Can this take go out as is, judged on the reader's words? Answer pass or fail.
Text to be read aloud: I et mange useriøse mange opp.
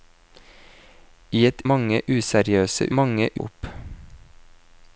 pass